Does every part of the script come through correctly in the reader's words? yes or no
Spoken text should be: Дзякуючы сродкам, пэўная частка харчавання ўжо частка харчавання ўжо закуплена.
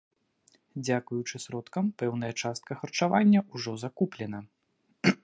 no